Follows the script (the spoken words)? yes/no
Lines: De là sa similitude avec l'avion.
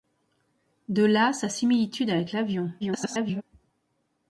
no